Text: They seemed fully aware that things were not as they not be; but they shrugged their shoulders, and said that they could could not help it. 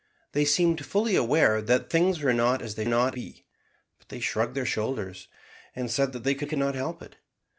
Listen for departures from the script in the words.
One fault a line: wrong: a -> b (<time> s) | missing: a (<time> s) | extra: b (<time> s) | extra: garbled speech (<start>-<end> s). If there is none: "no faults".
no faults